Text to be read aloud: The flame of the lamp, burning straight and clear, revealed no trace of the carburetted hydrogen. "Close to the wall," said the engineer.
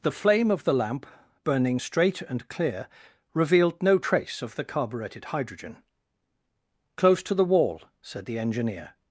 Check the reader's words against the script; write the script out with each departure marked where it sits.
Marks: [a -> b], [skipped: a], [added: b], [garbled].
The flame of the lamp, burning straight and clear, revealed no trace of the carburetted hydrogen. "Close to the wall," said the engineer.